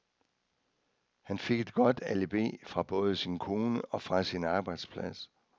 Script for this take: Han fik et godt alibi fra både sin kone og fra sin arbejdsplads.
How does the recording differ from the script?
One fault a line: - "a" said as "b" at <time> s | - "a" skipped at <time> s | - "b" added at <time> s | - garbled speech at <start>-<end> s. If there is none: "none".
none